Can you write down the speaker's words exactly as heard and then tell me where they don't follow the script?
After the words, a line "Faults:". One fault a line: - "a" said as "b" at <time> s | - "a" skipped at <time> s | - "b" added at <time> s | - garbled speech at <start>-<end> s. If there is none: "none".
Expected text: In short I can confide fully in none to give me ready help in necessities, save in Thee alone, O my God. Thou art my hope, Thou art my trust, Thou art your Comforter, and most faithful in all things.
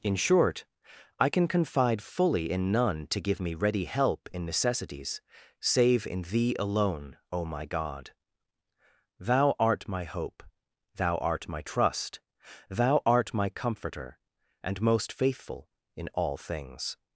In short I can confide fully in none to give me ready help in necessities, save in Thee alone, O my God. Thou art my hope, Thou art my trust, Thou art my Comforter, and most faithful in all things.
Faults:
- "your" said as "my" at 13.3 s